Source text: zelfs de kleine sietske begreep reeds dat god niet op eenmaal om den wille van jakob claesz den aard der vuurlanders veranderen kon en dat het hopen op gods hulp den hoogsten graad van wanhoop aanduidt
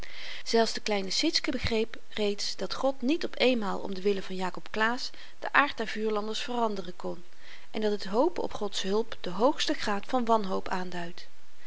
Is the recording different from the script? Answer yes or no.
no